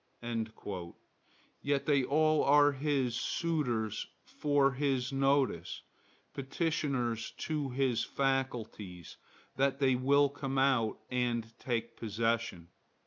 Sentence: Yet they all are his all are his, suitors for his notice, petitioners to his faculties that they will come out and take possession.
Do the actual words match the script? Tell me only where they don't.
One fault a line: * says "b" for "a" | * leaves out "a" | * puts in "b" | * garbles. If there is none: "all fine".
* leaves out "all are his"